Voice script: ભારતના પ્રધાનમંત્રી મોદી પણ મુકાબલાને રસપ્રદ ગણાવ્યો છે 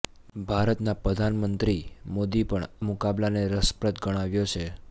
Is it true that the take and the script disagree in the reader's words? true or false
false